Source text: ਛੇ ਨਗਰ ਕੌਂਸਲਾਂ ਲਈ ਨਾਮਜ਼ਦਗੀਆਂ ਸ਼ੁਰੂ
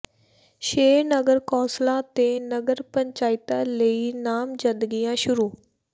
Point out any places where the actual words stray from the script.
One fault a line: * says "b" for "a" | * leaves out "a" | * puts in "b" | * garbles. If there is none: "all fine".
* puts in "ਤੇ ਨਗਰ ਪੰਚਾਇਤਾਂ"